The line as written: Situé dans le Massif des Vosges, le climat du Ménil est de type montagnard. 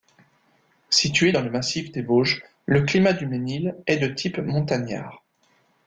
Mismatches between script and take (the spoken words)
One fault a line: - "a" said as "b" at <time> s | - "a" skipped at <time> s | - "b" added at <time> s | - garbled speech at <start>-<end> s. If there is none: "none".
none